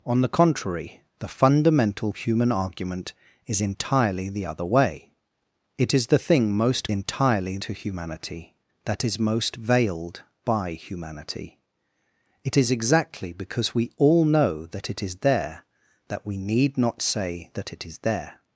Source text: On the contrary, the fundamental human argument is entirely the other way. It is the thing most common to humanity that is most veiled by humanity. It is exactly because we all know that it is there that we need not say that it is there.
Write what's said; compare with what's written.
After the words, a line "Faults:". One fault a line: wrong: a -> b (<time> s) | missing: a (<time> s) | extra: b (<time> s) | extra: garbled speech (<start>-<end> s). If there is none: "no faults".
On the contrary, the fundamental human argument is entirely the other way. It is the thing most entirely to humanity that is most veiled by humanity. It is exactly because we all know that it is there that we need not say that it is there.
Faults:
wrong: common -> entirely (6.9 s)